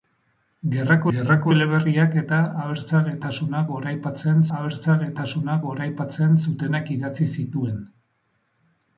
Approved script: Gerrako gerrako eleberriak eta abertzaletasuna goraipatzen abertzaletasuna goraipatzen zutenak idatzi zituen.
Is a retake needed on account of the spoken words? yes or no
no